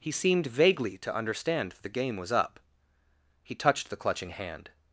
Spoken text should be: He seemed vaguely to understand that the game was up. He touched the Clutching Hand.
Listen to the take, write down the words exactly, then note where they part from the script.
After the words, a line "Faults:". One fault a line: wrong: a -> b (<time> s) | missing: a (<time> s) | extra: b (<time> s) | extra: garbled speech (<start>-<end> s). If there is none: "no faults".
He seemed vaguely to understand the game was up. He touched the Clutching Hand.
Faults:
missing: that (1.8 s)